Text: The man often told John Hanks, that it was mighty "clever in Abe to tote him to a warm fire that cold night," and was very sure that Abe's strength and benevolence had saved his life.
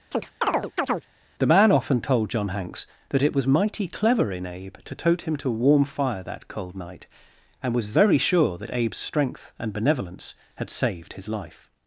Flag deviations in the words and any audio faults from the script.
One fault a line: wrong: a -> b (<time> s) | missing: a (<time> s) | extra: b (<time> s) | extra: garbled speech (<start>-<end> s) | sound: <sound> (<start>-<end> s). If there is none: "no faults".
sound: chirp (0.1-1.1 s)